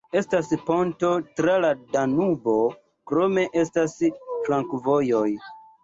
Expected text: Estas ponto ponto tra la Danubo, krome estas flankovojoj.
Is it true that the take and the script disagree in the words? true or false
true